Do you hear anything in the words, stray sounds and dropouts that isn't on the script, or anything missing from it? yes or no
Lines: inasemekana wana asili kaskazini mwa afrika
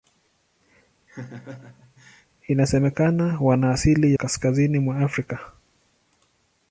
yes